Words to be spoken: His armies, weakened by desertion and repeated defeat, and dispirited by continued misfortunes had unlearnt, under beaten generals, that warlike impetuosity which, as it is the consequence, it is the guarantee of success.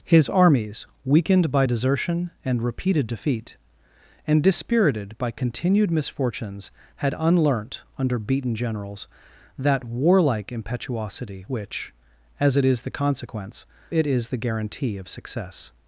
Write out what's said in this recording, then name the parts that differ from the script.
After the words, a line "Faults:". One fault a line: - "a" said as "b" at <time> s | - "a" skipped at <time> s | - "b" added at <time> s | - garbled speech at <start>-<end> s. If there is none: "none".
His armies, weakened by desertion and repeated defeat, and dispirited by continued misfortunes had unlearnt, under beaten generals, that warlike impetuosity which, as it is the consequence, it is the guarantee of success.
Faults:
none